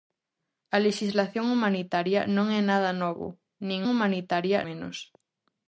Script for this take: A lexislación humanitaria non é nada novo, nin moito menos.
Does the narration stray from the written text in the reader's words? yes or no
yes